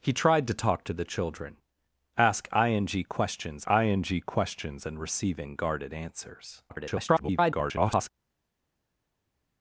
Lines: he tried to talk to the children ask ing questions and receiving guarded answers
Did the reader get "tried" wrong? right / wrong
right